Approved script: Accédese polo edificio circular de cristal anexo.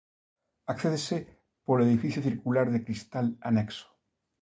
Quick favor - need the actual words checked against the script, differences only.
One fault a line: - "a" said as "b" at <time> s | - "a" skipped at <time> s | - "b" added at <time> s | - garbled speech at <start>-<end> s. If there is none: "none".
none